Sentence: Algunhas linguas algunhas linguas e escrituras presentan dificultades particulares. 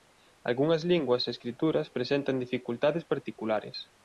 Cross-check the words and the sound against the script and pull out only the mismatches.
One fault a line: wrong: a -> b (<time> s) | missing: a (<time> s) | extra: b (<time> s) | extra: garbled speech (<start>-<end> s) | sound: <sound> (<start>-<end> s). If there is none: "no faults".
missing: algunhas linguas (1.3 s)